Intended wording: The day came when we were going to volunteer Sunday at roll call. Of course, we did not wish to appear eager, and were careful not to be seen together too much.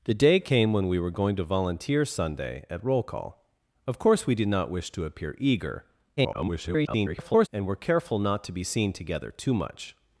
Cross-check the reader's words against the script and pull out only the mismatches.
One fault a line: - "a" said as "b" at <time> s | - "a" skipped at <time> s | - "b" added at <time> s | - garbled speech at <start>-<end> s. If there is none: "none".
- garbled speech at 6.2-7.5 s